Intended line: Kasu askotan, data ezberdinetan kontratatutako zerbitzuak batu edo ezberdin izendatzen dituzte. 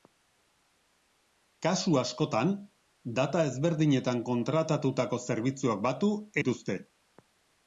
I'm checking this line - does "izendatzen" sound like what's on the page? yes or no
no